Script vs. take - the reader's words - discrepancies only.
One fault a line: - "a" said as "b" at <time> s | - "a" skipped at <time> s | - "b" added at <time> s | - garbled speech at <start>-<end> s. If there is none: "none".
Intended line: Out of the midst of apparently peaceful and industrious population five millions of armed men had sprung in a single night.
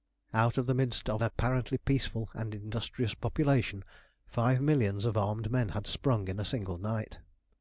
none